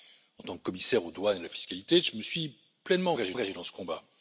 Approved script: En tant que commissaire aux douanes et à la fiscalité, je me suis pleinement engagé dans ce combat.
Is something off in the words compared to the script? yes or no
yes